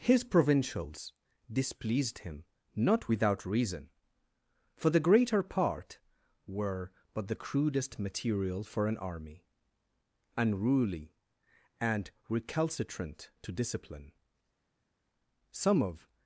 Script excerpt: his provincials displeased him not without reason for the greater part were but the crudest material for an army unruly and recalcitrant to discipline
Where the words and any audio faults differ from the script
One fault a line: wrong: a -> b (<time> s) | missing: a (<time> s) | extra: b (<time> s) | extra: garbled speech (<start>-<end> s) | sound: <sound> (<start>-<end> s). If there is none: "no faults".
extra: some of (15.5 s)